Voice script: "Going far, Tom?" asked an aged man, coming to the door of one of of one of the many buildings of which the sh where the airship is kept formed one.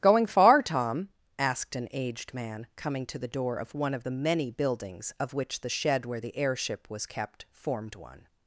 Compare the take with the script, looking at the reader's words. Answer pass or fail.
fail